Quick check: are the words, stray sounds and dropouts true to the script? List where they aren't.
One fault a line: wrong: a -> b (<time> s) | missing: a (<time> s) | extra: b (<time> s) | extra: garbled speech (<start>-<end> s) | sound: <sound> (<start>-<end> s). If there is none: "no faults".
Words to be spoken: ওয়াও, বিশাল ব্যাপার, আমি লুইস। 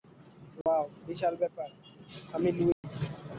sound: dropout (0.6-0.7 s)
sound: dropout (2.7-2.8 s)